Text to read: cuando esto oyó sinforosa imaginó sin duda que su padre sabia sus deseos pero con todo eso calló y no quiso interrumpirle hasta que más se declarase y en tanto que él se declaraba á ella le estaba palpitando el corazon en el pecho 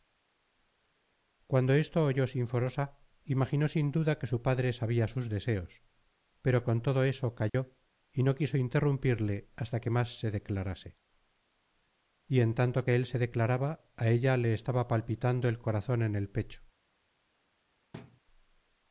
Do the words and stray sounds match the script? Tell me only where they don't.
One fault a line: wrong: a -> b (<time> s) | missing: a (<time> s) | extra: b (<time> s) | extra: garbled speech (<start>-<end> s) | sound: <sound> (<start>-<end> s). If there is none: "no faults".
sound: dropout (7.5-7.5 s)
sound: thud (17.9-18.2 s)